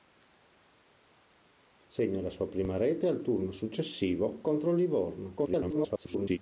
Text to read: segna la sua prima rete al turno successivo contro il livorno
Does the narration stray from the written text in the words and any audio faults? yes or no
yes